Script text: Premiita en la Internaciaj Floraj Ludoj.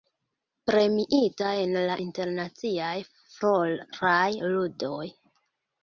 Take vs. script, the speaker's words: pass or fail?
pass